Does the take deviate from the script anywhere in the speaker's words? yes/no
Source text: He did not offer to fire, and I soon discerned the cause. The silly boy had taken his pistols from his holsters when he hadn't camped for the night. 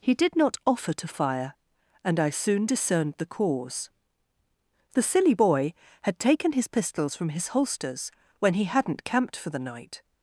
no